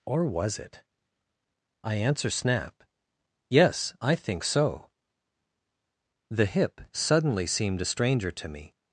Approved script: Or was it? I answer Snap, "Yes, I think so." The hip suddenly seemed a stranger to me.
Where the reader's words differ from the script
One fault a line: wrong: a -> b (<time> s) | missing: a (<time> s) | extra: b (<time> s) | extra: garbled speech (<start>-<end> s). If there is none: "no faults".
no faults